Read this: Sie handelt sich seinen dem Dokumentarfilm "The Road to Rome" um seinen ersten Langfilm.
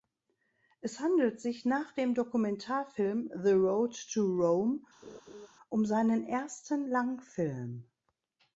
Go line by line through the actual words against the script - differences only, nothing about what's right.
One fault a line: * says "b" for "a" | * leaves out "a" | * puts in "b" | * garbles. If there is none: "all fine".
* says "Es" for "Sie"
* says "nach" for "seinen"